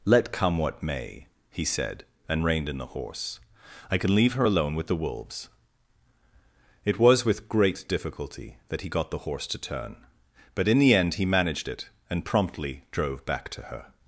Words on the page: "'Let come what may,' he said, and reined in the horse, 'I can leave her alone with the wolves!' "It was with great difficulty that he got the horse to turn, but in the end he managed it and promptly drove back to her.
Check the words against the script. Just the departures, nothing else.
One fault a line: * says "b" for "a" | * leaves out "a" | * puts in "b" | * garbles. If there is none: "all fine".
all fine